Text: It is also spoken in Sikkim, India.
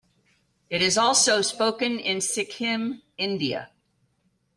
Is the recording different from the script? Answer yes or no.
no